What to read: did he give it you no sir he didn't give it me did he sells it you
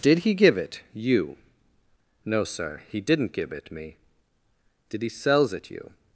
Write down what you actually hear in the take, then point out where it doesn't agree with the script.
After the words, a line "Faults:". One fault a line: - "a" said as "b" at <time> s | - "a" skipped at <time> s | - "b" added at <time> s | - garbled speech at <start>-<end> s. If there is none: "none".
did he give it you no sir he didn't give it me did he sells it you
Faults:
none